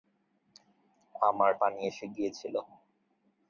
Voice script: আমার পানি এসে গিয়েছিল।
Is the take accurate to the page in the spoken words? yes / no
yes